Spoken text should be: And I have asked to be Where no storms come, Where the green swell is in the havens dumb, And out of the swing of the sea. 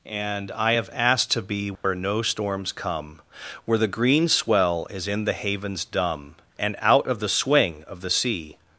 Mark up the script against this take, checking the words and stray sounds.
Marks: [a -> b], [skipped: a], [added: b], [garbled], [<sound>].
And I have asked to be Where [dropout] no storms come, Where the green swell is in the havens dumb, And out of the swing of the sea.